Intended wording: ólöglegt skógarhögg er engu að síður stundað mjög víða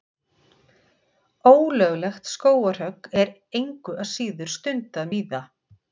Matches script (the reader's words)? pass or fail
fail